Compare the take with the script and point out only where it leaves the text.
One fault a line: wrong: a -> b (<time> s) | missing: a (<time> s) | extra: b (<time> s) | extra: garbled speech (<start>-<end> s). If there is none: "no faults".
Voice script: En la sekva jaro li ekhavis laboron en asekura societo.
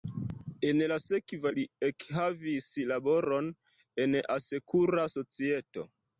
missing: jaro (1.5 s)